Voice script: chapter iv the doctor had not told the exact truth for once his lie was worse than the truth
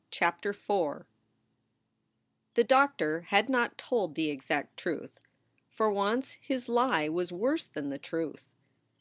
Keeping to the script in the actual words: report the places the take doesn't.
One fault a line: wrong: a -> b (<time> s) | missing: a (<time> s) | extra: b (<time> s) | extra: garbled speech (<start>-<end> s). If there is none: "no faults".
no faults